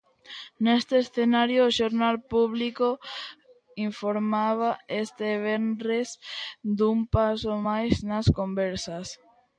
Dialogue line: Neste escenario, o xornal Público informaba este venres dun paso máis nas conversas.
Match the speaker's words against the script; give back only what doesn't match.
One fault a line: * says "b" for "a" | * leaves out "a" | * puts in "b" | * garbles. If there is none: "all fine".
all fine